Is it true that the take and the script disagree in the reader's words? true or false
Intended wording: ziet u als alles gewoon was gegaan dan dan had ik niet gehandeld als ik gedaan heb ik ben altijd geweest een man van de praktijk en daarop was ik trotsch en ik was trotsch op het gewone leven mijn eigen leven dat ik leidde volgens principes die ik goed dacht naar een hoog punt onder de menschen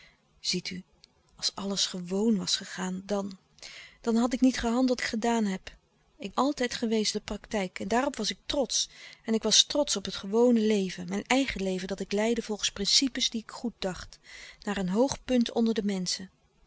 true